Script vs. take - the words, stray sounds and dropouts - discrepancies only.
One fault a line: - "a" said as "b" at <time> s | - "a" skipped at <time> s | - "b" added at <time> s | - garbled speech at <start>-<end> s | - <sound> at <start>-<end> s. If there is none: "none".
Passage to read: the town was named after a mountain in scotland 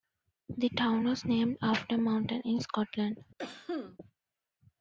- cough at 3.4-4.0 s